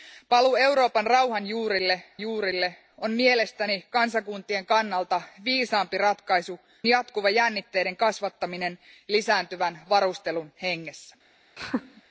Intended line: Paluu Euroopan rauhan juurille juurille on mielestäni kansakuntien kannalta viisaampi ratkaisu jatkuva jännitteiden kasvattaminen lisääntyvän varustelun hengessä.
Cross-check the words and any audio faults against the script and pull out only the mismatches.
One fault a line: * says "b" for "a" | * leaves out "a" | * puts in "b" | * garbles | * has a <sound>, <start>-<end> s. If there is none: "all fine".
* has a laugh, 11.6-12.0 s